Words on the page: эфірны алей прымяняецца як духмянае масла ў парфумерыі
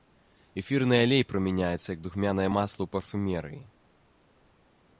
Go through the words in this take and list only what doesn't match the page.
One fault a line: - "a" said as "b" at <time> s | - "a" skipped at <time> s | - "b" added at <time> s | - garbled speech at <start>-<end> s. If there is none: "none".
none